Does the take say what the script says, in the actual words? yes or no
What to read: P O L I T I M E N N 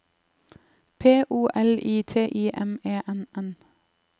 yes